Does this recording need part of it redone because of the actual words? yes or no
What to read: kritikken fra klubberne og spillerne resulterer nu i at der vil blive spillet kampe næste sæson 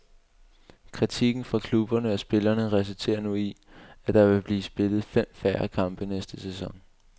yes